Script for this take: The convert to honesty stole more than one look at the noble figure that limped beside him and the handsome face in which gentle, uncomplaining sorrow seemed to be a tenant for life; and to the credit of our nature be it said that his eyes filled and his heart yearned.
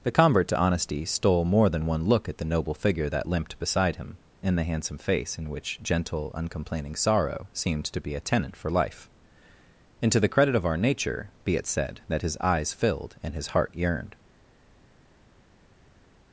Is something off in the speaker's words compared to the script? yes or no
no